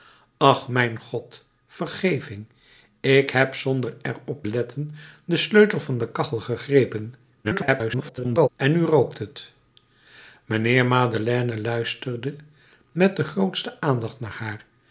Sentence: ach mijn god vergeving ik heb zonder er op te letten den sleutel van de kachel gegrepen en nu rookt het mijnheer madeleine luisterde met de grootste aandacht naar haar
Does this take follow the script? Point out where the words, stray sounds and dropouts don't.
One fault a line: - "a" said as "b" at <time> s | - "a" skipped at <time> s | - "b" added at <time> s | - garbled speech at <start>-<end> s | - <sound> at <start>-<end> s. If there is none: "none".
- "te" skipped at 4.5 s
- garbled speech at 7.4-8.5 s